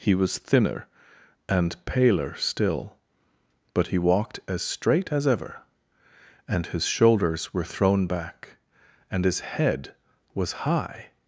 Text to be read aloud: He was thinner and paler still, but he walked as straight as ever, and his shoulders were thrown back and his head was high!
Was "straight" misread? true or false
false